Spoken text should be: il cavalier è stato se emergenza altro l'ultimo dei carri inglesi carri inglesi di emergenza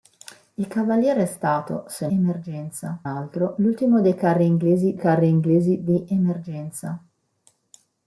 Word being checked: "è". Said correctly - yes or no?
yes